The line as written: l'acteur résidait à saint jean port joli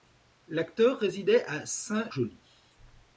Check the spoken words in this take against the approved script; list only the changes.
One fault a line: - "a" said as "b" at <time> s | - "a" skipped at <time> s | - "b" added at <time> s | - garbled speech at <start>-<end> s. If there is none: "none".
- "jean port" skipped at 2.1 s